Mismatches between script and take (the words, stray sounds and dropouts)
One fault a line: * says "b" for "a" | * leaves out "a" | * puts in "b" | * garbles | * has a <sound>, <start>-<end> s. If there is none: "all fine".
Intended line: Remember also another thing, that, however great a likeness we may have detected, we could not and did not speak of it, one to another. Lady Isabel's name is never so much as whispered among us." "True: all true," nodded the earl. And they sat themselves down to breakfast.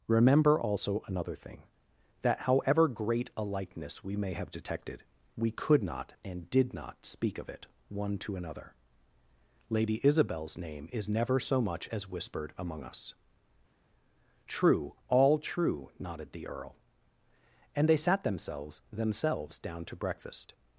* puts in "themselves"